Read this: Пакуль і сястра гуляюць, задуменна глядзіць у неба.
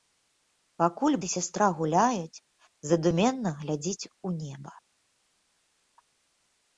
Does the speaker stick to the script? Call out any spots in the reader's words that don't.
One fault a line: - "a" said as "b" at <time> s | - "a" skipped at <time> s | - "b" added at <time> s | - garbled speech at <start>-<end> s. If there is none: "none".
none